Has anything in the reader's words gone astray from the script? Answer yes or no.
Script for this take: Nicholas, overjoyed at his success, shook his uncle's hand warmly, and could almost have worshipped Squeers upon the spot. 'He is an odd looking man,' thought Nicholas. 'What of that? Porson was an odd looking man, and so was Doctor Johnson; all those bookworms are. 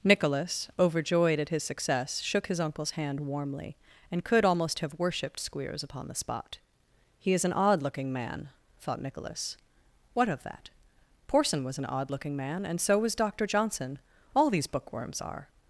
yes